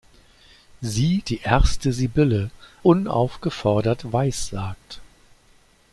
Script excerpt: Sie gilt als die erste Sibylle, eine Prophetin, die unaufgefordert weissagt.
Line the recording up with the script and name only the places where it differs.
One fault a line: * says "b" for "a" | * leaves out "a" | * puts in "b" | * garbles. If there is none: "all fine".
* leaves out "gilt als"
* leaves out "eine Prophetin die"